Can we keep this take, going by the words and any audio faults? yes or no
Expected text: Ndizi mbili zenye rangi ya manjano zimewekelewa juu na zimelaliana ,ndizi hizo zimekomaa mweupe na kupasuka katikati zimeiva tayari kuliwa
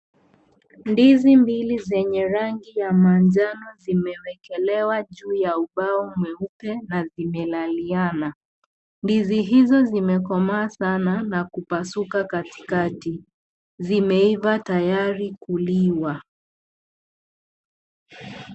no